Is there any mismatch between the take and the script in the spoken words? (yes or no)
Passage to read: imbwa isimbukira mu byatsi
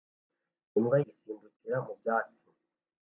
no